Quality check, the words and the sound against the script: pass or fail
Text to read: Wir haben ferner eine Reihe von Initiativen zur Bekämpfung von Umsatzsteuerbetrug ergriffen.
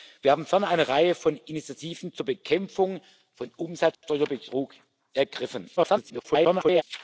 fail